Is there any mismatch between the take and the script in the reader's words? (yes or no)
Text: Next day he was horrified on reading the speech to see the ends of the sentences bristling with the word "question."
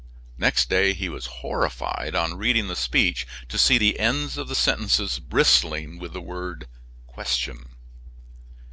no